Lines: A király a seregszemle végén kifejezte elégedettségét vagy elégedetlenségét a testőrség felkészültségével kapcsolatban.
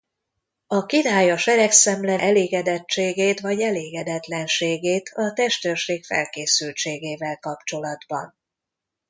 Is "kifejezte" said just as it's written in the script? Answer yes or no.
no